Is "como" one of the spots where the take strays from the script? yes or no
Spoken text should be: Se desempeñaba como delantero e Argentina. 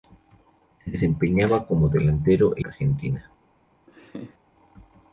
no